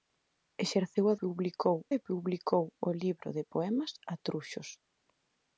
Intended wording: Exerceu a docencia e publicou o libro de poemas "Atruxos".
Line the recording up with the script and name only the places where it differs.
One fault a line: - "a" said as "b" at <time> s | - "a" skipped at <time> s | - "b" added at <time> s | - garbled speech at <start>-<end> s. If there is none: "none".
- "docencia" said as "publicou" at 1.2 s